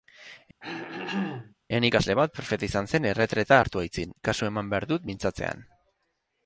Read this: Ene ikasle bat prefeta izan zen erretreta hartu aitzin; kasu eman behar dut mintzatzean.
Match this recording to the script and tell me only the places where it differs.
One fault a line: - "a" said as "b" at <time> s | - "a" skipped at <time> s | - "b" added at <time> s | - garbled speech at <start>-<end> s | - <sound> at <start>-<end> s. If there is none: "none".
- throat clearing at 0.6-1.5 s